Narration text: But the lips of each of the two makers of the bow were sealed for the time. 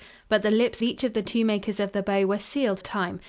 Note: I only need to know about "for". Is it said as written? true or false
false